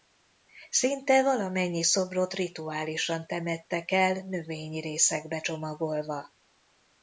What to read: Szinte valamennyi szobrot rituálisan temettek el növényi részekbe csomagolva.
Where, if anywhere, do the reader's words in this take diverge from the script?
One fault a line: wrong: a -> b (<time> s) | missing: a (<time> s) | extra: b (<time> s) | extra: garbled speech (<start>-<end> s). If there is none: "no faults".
no faults